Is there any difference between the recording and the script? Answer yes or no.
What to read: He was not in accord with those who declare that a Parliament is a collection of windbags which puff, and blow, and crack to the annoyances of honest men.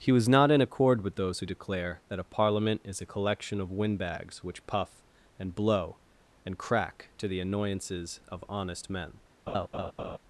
no